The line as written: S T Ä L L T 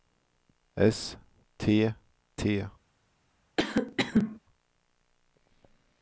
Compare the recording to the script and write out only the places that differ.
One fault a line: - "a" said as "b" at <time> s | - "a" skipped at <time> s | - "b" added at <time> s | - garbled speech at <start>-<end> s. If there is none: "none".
- "Ä L L" skipped at 1.9 s